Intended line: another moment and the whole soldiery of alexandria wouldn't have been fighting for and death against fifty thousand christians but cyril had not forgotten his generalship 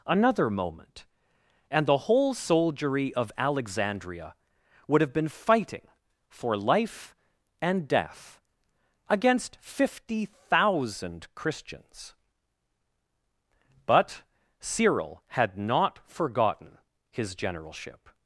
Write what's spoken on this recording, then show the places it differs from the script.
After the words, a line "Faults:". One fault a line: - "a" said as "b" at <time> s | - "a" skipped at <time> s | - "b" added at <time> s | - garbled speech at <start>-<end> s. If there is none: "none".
another moment and the whole soldiery of alexandria would have been fighting for life and death against fifty thousand christians but cyril had not forgotten his generalship
Faults:
- "wouldn't" said as "would" at 4.9 s
- "life" added at 6.6 s